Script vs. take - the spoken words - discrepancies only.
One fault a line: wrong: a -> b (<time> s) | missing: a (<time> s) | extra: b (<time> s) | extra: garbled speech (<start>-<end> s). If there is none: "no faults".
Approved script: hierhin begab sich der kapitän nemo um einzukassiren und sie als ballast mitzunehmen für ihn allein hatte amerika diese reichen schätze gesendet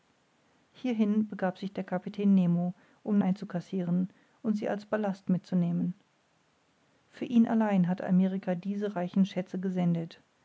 no faults